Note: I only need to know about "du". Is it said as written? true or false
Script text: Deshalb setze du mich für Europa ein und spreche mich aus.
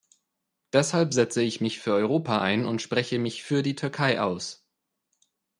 false